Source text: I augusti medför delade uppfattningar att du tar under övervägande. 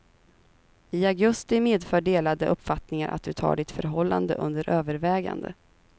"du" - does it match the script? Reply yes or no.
yes